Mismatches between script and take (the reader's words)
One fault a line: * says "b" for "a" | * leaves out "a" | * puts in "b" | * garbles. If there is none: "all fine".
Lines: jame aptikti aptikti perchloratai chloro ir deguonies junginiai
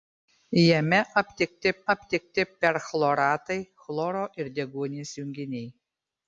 all fine